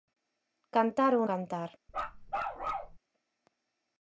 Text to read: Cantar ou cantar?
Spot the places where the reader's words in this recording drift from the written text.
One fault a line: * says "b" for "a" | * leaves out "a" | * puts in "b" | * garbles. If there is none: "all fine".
all fine